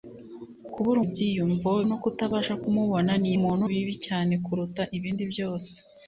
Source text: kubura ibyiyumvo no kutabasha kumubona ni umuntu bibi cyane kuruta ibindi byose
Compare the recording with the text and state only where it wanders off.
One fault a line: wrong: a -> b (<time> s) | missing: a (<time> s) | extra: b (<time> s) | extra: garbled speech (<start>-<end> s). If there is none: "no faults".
no faults